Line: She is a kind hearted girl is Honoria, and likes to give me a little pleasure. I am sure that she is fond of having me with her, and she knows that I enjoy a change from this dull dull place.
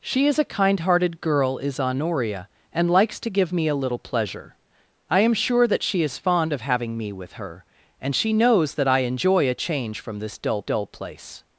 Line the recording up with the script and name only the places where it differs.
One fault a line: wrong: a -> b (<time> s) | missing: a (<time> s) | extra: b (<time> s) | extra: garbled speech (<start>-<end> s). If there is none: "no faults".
no faults